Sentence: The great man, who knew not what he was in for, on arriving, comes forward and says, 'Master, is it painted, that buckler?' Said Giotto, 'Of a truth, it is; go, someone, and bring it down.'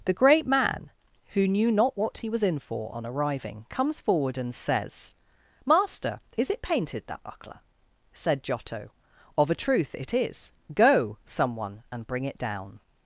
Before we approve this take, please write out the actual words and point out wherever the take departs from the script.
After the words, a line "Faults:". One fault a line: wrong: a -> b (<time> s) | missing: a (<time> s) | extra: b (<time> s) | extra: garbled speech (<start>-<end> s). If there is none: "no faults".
The great man, who knew not what he was in for, on arriving, comes forward and says, 'Master, is it painted, that buckler?' Said Giotto, 'Of a truth, it is; go, someone, and bring it down.'
Faults:
no faults